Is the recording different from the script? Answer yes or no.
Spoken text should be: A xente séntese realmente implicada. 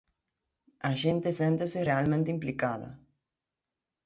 no